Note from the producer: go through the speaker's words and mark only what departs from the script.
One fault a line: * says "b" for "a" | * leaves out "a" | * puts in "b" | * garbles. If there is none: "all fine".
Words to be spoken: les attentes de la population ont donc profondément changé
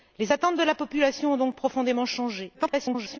* garbles